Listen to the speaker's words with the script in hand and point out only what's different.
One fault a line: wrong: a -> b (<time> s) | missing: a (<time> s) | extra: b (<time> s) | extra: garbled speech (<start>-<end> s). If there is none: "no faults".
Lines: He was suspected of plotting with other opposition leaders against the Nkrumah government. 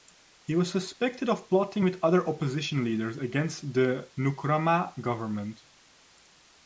no faults